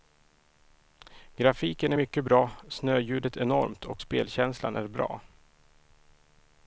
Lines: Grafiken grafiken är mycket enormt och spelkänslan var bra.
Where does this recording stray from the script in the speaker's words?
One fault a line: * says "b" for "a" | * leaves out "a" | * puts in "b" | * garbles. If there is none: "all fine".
* leaves out "grafiken"
* puts in "bra snöljudet"
* says "är" for "var"